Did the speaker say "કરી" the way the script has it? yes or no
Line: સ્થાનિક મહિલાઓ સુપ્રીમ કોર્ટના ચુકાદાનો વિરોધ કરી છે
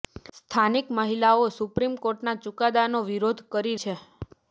yes